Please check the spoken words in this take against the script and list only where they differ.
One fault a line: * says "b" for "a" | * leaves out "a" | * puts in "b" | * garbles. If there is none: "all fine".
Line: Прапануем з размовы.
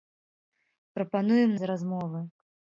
all fine